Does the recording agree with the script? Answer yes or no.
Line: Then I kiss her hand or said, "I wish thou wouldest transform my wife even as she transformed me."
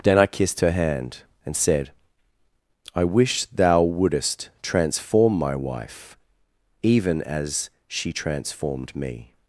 no